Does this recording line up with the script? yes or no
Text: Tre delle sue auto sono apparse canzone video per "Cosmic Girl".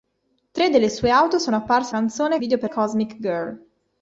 yes